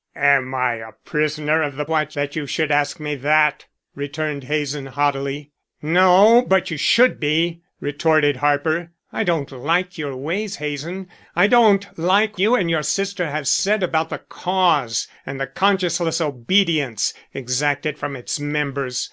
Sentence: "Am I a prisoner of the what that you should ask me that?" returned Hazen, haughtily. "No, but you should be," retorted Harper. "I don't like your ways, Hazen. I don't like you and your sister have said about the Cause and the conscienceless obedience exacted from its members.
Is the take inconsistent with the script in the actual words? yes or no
no